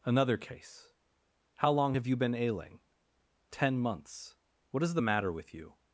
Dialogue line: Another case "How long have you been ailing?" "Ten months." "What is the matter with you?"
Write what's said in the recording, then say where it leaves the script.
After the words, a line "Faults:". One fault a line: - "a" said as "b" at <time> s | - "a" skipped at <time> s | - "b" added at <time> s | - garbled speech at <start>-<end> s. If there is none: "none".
Another case "How long have you been ailing?" "Ten months." "What is the matter with you?"
Faults:
none